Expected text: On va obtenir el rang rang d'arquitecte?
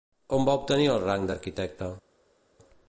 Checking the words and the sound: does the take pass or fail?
fail